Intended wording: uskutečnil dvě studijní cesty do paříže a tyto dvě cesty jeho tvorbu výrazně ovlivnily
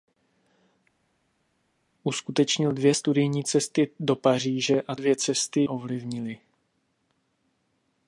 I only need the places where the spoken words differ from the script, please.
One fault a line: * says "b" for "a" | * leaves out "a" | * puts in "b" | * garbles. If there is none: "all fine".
* leaves out "tyto"
* leaves out "jeho tvorbu výrazně"